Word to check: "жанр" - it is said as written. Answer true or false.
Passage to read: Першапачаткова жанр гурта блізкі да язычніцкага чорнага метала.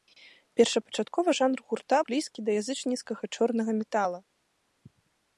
true